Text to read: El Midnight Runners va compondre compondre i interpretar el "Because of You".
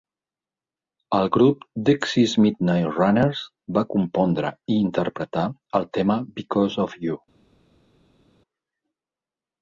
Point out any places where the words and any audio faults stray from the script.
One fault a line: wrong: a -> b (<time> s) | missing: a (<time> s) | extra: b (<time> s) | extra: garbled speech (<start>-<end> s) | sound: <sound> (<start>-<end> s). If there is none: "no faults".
extra: grup Dexys (1.4 s)
missing: compondre (4.5 s)
extra: tema (6.0 s)